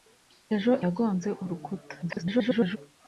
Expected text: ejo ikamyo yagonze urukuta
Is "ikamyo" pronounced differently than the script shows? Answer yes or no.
yes